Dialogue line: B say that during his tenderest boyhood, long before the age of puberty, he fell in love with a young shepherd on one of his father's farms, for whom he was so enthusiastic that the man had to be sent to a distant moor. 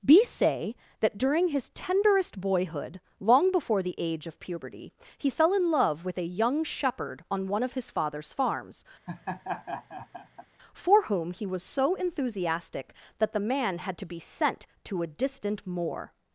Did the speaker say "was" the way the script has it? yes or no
yes